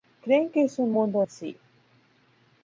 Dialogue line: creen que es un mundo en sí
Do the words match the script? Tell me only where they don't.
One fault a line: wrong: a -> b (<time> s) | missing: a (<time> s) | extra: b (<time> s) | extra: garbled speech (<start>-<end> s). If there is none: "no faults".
no faults